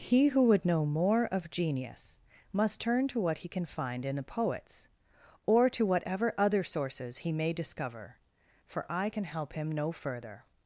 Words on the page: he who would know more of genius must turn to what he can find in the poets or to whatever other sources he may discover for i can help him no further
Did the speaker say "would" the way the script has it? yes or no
yes